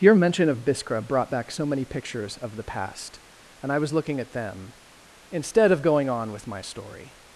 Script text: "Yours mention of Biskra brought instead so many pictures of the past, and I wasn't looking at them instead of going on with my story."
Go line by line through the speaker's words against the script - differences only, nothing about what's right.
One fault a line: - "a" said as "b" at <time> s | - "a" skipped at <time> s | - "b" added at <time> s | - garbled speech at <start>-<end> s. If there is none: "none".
- "Yours" said as "Your" at 0.0 s
- "instead" said as "back" at 1.3 s
- "wasn't" said as "was" at 3.8 s